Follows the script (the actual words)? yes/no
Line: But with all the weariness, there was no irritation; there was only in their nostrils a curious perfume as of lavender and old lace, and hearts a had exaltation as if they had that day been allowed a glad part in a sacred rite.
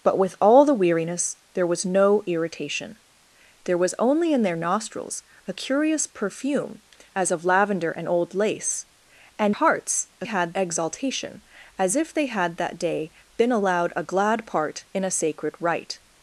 yes